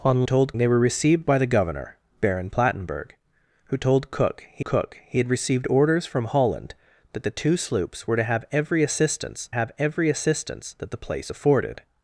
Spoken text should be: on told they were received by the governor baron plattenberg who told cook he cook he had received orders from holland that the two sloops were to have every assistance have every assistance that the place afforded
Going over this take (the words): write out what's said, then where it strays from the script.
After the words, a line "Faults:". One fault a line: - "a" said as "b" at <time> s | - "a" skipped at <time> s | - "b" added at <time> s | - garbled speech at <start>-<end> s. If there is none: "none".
on told they were received by the governor baron plattenberg who told cook he cook he had received orders from holland that the two sloops were to have every assistance have every assistance that the place afforded
Faults:
none